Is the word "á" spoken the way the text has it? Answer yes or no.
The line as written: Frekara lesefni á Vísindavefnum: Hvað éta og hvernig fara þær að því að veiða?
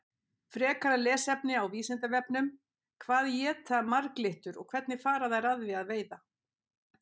yes